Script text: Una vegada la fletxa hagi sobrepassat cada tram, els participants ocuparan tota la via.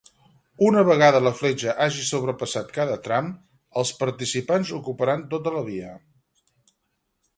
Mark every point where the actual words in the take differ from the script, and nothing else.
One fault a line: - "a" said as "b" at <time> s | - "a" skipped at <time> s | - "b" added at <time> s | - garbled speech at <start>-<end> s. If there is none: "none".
none